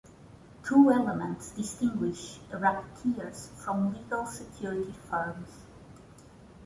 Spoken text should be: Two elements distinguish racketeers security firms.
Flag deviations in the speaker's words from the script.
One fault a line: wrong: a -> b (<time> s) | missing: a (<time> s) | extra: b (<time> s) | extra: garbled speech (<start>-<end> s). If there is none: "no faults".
extra: from legal (3.6 s)